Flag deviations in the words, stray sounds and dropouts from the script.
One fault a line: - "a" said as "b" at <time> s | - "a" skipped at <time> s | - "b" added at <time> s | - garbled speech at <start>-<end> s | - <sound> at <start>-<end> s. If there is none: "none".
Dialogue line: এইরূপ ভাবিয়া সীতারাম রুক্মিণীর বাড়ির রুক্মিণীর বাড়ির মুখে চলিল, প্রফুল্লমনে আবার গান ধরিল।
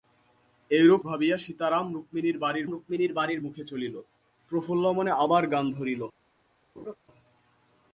- laugh at 6.8-7.0 s